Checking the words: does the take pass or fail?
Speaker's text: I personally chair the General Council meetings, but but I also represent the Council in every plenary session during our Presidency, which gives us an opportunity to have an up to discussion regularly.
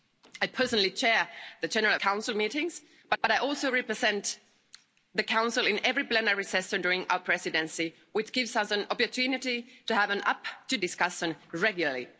pass